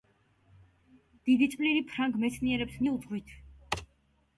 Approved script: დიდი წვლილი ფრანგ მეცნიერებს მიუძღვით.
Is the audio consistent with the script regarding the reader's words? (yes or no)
yes